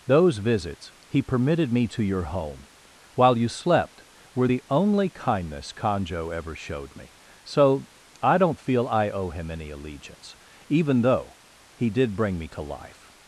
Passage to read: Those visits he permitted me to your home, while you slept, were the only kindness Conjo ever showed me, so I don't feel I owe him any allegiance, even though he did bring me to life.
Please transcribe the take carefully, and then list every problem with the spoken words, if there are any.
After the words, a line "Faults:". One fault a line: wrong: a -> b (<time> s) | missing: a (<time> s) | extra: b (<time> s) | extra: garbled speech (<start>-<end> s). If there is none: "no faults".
Those visits he permitted me to your home, while you slept, were the only kindness Conjo ever showed me, so I don't feel I owe him any allegiance, even though he did bring me to life.
Faults:
no faults